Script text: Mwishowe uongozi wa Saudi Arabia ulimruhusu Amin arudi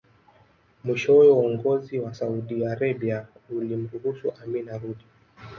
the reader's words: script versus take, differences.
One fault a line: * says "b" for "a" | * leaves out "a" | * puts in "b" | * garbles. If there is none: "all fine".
all fine